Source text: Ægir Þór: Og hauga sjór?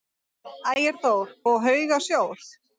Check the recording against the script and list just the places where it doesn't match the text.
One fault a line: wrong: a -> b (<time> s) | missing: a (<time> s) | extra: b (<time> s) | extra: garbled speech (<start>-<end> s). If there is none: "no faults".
no faults